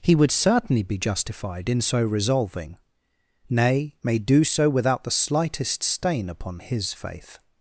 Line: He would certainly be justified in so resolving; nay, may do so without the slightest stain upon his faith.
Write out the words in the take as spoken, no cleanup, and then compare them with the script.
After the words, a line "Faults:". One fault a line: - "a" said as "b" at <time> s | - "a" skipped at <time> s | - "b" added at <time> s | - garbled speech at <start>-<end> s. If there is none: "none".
He would certainly be justified in so resolving; nay, may do so without the slightest stain upon his faith.
Faults:
none